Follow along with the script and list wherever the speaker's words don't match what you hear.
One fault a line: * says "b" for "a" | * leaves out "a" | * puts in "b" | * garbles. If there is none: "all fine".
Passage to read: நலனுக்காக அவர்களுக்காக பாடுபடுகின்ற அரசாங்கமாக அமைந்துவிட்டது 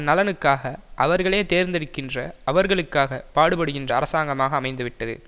* puts in "அவர்களே தேர்ந்தெடுக்கின்ற"